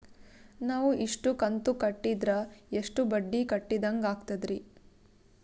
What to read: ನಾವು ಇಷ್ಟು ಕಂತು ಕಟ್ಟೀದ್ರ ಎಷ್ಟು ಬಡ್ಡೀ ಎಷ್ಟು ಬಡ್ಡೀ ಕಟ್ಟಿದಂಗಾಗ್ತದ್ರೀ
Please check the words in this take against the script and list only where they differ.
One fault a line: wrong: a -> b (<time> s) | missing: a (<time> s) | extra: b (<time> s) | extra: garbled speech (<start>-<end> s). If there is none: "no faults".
missing: ಎಷ್ಟು ಬಡ್ಡೀ (3.5 s)